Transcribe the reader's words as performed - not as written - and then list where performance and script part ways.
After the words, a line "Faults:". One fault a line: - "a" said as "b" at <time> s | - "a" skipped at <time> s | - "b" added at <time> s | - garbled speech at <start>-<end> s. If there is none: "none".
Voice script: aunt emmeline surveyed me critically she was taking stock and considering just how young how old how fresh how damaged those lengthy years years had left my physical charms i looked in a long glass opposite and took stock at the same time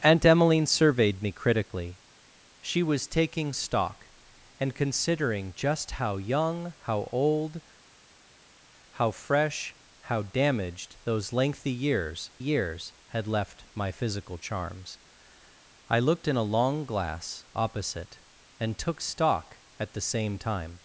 aunt emmeline surveyed me critically she was taking stock and considering just how young how old how fresh how damaged those lengthy years years had left my physical charms i looked in a long glass opposite and took stock at the same time
Faults:
none